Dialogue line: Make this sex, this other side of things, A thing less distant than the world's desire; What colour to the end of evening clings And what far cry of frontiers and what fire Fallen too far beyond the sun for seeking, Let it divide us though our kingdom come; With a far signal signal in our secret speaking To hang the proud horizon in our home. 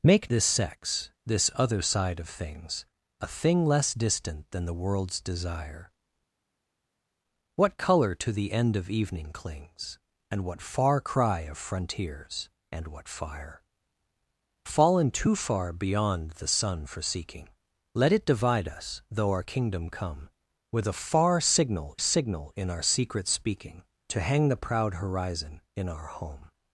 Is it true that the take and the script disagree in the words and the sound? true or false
false